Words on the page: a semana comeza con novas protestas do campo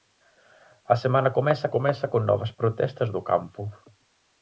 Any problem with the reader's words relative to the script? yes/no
yes